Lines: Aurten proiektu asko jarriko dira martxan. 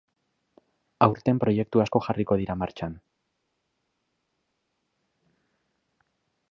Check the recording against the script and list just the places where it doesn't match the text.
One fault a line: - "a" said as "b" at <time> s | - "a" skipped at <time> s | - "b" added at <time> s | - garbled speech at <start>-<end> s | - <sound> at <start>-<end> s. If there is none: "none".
none